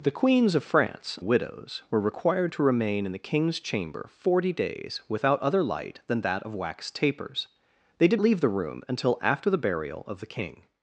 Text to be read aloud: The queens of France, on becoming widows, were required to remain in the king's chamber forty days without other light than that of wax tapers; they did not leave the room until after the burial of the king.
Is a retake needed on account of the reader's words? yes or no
yes